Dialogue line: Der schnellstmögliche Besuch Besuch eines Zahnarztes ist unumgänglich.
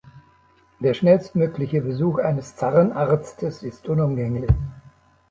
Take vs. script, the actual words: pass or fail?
fail